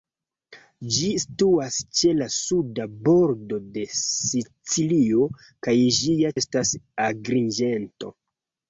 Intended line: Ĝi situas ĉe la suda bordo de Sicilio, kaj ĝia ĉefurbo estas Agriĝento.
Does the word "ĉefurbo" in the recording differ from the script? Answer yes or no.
yes